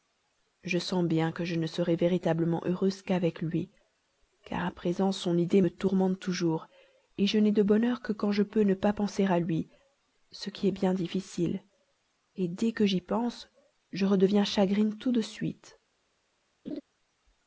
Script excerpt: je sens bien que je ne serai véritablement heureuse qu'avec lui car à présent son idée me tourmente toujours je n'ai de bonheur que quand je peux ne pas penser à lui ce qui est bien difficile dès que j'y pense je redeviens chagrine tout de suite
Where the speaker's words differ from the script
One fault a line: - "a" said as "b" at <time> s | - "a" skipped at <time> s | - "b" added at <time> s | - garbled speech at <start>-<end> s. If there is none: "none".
none